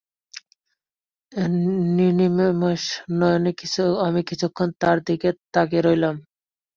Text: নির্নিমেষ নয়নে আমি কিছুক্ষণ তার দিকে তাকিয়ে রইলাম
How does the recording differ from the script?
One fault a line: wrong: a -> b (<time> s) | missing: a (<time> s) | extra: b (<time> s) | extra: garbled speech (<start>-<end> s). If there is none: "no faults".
no faults